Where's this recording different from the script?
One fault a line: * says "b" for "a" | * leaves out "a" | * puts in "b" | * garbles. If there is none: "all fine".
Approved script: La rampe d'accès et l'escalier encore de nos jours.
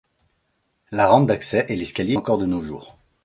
all fine